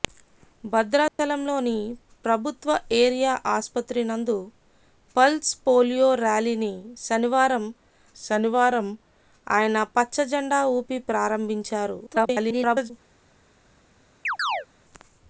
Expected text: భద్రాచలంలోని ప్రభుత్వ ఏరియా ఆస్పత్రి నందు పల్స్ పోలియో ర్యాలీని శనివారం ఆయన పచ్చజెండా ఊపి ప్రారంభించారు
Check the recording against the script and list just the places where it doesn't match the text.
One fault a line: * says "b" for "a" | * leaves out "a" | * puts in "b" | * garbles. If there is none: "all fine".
* puts in "శనివారం"
* garbles